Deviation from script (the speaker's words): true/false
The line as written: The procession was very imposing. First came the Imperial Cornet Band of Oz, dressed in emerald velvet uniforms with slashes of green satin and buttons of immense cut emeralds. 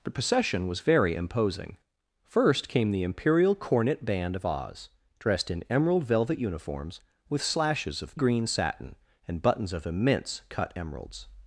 false